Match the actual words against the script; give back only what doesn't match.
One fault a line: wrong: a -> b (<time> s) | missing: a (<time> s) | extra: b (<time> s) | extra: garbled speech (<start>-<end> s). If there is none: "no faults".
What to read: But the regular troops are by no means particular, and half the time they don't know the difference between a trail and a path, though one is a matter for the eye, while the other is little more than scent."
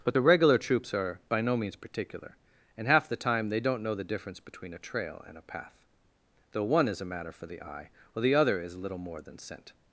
no faults